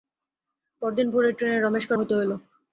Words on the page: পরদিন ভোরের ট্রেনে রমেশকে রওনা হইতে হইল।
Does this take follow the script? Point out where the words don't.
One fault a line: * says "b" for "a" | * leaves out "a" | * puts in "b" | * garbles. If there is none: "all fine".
* leaves out "রওনা"